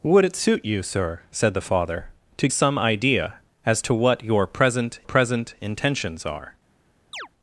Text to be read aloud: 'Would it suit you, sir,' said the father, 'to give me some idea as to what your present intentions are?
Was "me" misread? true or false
true